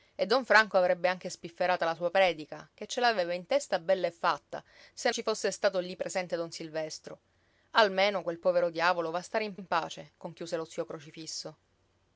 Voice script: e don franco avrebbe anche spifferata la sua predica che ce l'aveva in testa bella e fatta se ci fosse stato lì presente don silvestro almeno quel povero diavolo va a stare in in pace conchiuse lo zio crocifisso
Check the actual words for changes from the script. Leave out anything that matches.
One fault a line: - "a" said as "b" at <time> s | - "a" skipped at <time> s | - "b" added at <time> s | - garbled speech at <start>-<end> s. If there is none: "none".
none